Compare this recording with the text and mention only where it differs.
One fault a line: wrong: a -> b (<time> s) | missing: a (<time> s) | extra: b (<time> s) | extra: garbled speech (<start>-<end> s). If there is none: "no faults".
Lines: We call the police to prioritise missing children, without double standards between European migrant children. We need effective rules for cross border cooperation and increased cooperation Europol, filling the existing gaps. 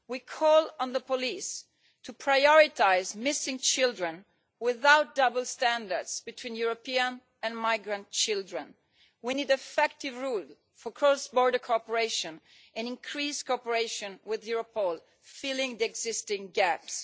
extra: on (0.8 s)
extra: and (7.4 s)
extra: with (14.2 s)